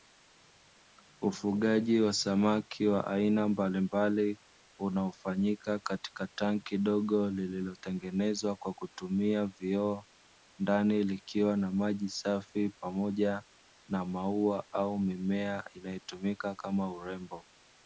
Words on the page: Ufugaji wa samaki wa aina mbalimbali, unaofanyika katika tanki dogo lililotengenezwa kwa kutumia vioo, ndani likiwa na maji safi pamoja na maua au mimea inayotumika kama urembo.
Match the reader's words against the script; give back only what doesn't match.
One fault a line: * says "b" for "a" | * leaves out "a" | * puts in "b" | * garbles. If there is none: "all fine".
all fine